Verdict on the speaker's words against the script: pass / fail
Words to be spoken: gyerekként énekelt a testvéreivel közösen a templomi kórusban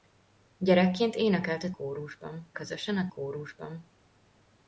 fail